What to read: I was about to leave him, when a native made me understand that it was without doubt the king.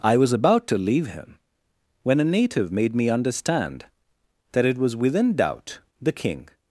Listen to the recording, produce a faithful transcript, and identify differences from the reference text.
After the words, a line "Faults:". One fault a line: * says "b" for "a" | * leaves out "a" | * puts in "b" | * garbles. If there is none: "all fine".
I was about to leave him, when a native made me understand that it was within doubt the king.
Faults:
* says "within" for "without"